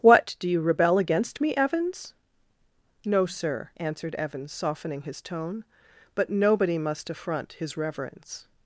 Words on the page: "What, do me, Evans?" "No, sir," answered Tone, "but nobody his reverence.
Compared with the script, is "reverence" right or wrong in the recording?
right